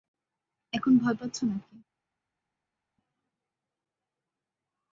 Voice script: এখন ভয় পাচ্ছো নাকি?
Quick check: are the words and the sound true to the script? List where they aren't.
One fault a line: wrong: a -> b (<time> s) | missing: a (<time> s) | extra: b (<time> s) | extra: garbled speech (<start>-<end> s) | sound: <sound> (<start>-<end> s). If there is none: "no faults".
no faults